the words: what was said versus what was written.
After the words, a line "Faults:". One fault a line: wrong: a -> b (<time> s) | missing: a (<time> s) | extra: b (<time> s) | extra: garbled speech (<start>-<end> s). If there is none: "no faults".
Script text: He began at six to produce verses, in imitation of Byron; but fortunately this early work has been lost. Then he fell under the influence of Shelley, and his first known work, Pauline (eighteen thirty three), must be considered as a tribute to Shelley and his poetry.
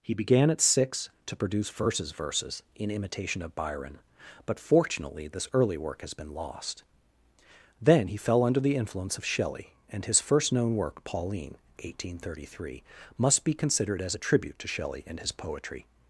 He began at six to produce verses verses, in imitation of Byron; but fortunately this early work has been lost. Then he fell under the influence of Shelley, and his first known work, Pauline (eighteen thirty three), must be considered as a tribute to Shelley and his poetry.
Faults:
extra: verses (2.1 s)